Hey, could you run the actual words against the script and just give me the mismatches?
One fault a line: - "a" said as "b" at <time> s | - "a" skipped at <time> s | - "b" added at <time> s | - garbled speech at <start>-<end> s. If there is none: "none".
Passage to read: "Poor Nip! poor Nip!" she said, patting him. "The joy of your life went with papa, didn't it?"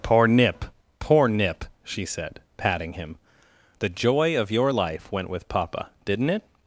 none